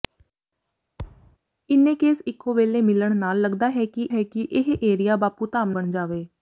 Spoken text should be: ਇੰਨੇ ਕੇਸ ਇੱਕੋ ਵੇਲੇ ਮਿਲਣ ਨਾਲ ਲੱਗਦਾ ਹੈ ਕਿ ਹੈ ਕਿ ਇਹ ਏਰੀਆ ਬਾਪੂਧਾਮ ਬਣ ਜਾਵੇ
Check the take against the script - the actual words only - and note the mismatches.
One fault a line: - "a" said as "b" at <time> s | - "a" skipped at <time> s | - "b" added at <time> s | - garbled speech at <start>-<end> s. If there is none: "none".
none